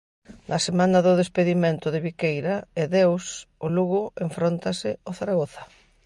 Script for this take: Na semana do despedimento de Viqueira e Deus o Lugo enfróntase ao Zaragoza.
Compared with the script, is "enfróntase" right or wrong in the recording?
right